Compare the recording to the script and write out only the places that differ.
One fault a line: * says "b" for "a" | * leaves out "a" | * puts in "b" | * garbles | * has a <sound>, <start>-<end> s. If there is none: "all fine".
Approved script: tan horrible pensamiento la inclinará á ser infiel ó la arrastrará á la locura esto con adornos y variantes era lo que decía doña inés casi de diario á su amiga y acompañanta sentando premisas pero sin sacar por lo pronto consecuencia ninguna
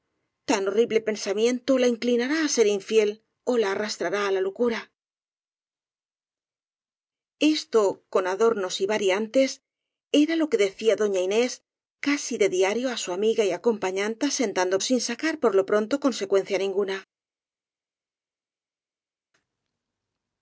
* leaves out "premisas pero"